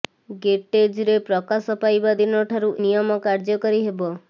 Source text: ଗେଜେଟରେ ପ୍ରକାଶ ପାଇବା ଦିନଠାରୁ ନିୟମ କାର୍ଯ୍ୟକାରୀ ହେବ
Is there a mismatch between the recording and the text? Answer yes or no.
no